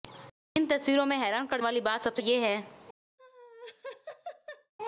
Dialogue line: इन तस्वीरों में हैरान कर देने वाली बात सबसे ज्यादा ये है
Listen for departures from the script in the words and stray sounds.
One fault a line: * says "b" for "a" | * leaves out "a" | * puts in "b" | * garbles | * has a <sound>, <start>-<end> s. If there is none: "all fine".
* leaves out "देने"
* leaves out "ज्यादा"
* has a laugh, 3.2-4.7 s